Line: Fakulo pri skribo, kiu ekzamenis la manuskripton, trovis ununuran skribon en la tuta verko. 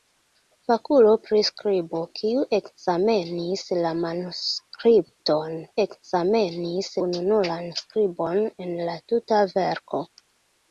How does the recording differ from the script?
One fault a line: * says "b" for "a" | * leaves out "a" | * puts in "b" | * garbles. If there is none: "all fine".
* says "ekzamenis" for "trovis"